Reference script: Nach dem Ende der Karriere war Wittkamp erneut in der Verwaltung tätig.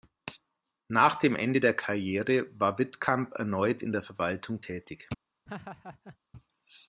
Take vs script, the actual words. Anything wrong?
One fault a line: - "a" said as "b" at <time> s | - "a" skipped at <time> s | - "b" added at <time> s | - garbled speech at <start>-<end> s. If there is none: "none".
none